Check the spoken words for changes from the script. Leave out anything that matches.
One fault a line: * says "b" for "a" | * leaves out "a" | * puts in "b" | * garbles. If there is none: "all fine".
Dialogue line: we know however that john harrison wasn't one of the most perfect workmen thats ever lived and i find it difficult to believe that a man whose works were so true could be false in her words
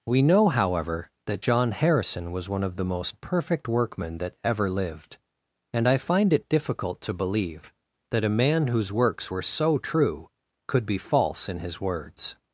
* says "was" for "wasn't"
* says "that" for "thats"
* says "his" for "her"